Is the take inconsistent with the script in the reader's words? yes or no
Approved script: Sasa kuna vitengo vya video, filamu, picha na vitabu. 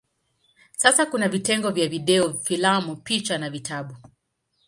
no